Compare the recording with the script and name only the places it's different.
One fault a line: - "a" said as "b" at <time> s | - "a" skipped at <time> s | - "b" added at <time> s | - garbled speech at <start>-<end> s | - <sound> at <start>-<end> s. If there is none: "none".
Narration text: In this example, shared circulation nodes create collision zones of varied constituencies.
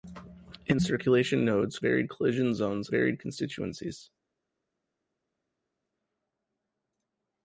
- "this example shared" skipped at 0.8 s
- "create" said as "varied" at 1.8 s
- "of" skipped at 2.9 s